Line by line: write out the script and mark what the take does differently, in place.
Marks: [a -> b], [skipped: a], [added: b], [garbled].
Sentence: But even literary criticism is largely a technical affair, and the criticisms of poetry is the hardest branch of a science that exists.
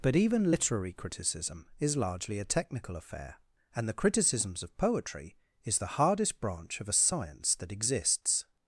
But even literary criticism is largely a technical affair, and the criticisms of poetry is the hardest branch of a science that exists.